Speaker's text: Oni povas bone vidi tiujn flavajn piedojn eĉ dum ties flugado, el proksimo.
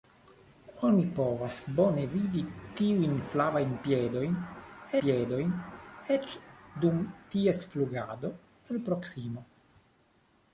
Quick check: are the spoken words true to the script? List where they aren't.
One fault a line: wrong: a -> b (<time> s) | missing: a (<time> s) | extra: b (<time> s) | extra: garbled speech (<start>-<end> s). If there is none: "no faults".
extra: piedojn (5.0 s)